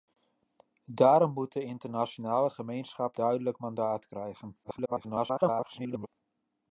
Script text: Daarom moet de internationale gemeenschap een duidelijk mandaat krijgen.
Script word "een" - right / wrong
wrong